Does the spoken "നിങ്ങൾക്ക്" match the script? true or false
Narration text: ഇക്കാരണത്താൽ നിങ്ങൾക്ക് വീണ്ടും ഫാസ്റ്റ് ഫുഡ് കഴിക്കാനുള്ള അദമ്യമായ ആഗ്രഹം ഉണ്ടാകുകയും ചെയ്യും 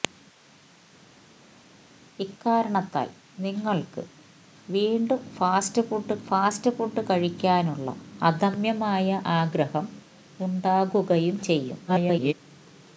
true